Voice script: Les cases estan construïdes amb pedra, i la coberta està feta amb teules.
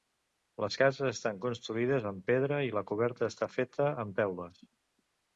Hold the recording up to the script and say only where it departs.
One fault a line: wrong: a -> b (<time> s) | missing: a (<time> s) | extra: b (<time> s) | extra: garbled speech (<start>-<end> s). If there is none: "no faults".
no faults